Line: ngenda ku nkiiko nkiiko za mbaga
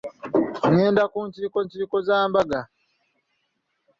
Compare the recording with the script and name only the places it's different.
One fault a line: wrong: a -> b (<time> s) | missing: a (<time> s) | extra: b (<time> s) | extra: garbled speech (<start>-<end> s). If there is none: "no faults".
no faults